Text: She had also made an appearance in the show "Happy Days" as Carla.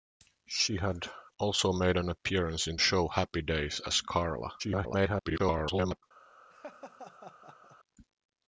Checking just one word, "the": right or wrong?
wrong